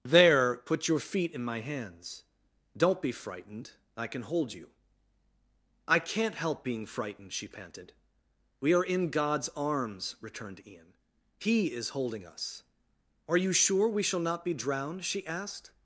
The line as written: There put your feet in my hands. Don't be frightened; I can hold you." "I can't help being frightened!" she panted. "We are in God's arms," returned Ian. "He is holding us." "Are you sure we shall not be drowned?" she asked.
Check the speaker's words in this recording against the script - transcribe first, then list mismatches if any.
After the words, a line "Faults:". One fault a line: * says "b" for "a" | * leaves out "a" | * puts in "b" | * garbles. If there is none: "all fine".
There put your feet in my hands. Don't be frightened; I can hold you." "I can't help being frightened!" she panted. "We are in God's arms," returned Ian. "He is holding us." "Are you sure we shall not be drowned?" she asked.
Faults:
all fine